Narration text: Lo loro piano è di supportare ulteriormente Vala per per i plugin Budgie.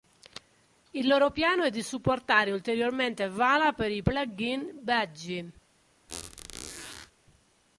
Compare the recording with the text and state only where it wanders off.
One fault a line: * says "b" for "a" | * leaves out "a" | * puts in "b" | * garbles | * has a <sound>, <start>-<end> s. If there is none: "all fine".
* says "Il" for "Lo"
* leaves out "per"
* has a squeak, 6.1-7.1 s